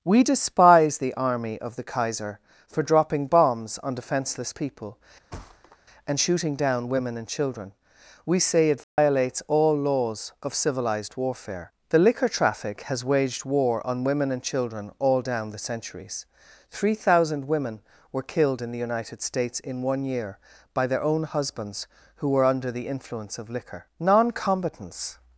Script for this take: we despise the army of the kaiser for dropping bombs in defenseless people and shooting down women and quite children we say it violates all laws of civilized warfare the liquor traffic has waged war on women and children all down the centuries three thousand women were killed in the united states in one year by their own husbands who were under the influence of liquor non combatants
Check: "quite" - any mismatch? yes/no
yes